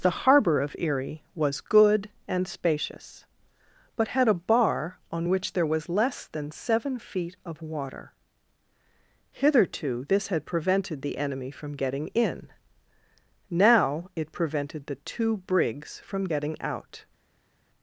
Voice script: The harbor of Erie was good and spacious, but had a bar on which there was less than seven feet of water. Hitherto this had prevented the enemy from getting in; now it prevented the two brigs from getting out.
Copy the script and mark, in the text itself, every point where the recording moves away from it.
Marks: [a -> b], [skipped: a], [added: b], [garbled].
The harbor of Erie was good and spacious, but had a bar on which there was less than seven feet of water. Hitherto this had prevented the enemy from getting in; now it prevented the two brigs from getting out.